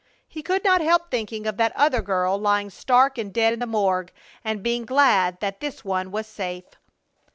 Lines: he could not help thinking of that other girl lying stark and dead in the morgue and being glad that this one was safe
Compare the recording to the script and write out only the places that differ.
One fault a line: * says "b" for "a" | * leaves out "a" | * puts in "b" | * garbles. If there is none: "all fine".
all fine